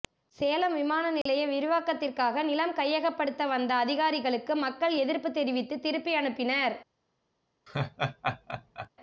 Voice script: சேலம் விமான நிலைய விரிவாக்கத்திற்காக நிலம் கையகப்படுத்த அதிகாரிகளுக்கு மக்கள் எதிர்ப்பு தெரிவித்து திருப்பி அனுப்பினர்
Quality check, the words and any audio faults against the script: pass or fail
fail